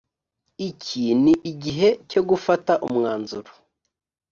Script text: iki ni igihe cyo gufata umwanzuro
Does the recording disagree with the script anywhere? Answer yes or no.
no